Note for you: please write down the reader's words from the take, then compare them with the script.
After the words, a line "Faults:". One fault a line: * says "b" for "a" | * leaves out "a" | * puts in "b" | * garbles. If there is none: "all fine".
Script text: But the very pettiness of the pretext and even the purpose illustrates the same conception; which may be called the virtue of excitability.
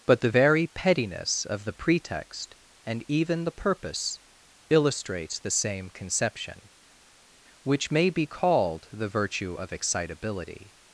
But the very pettiness of the pretext and even the purpose illustrates the same conception; which may be called the virtue of excitability.
Faults:
all fine